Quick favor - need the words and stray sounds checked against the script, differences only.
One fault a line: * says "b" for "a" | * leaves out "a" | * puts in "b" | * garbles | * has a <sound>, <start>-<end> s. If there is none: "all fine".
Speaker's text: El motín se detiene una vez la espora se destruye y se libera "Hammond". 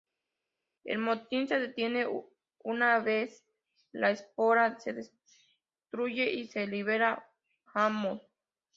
all fine